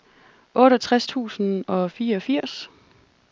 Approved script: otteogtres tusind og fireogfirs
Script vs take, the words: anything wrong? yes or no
no